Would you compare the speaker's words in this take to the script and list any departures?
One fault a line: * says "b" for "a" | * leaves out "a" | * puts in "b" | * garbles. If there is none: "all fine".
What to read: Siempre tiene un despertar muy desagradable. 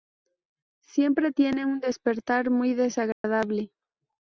all fine